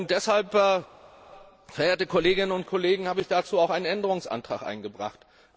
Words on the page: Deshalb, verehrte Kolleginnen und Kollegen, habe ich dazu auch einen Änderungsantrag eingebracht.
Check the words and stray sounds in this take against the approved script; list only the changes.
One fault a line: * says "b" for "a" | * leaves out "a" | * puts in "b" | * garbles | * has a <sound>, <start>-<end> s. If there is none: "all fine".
all fine